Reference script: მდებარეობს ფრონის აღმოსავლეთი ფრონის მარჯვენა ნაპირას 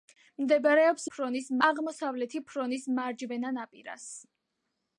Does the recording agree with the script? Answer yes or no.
yes